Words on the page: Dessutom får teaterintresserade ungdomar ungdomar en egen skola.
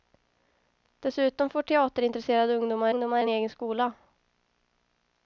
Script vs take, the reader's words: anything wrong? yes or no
no